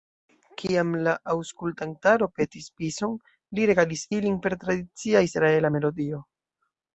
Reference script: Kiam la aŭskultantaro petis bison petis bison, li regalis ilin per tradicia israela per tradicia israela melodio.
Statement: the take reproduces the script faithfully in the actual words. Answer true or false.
false